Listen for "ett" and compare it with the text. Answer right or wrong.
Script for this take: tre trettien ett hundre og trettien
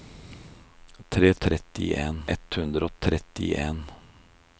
right